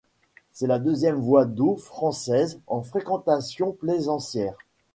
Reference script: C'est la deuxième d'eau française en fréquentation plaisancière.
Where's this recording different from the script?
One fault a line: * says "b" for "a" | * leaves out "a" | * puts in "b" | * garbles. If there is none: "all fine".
* puts in "voie"